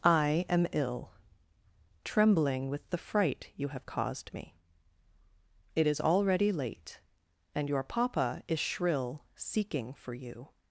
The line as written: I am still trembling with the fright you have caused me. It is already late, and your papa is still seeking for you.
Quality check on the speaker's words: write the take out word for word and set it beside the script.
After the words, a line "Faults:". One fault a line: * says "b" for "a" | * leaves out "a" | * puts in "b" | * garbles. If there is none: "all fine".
I am ill trembling with the fright you have caused me. It is already late, and your papa is shrill seeking for you.
Faults:
* says "ill" for "still"
* says "shrill" for "still"